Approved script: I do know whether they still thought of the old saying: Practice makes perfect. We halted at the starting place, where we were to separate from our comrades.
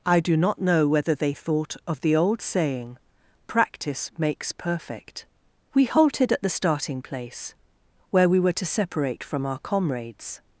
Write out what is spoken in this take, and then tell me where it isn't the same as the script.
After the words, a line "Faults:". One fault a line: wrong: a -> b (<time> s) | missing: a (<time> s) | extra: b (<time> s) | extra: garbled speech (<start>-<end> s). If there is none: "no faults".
I do not know whether they thought of the old saying: Practice makes perfect. We halted at the starting place, where we were to separate from our comrades.
Faults:
extra: not (0.3 s)
missing: still (1.3 s)